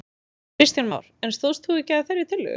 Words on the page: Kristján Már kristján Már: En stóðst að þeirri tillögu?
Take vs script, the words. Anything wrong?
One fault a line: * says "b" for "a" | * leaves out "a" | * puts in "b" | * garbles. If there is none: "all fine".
* says "En stóðst þú ekki" for "kristján Már En stóðst"